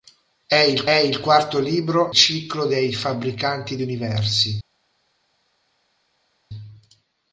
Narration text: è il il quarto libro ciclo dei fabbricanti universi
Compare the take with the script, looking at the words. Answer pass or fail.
pass